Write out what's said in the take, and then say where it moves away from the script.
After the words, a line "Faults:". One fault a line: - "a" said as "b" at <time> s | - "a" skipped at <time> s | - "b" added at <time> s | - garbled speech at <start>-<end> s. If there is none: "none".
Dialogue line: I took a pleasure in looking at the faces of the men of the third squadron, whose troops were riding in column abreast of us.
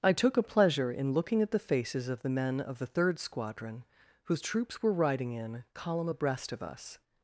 I took a pleasure in looking at the faces of the men of the third squadron, whose troops were riding in column abreast of us.
Faults:
none